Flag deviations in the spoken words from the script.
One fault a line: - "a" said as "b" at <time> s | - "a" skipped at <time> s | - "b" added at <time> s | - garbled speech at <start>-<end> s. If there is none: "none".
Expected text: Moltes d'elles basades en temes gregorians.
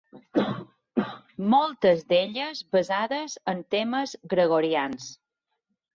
none